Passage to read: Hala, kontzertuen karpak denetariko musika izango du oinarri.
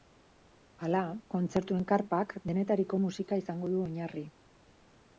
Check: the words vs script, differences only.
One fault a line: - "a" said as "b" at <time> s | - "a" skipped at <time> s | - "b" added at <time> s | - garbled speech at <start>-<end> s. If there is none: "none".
none